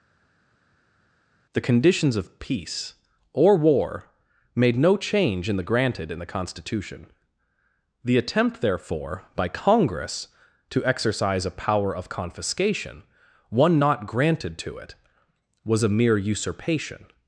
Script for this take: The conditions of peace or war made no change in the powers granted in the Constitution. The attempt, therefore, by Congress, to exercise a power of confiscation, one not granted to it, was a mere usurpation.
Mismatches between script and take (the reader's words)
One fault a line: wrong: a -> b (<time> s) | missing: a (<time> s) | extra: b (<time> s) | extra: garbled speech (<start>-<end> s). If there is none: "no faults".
missing: powers (5.6 s)